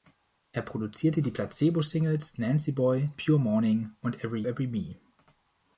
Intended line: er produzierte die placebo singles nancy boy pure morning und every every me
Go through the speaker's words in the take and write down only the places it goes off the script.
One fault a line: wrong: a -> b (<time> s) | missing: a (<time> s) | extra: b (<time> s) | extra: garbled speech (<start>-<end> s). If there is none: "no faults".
no faults